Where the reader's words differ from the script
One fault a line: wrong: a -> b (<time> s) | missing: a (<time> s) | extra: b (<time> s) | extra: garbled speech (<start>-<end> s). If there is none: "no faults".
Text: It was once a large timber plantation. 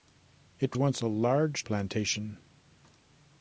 missing: was (0.8 s)
missing: timber (1.6 s)